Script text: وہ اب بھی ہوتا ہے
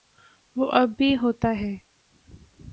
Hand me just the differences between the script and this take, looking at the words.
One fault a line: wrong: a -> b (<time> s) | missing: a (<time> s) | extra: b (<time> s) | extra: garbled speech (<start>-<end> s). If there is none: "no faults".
no faults